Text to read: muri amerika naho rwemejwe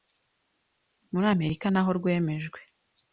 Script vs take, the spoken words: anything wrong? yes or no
no